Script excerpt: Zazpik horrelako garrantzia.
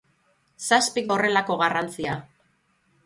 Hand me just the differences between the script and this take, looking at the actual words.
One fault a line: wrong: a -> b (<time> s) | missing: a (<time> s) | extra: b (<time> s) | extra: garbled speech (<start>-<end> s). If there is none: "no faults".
no faults